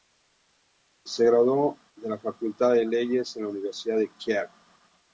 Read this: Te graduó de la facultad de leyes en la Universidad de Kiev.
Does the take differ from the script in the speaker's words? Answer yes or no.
yes